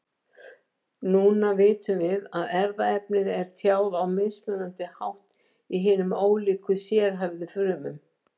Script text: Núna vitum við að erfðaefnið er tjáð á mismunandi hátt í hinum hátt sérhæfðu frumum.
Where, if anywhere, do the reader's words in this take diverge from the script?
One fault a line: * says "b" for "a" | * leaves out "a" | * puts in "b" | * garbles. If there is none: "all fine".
* says "ólíku" for "hátt"